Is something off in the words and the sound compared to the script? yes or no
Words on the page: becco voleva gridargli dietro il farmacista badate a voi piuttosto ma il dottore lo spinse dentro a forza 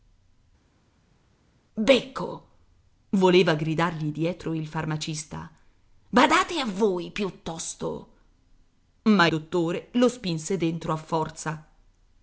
yes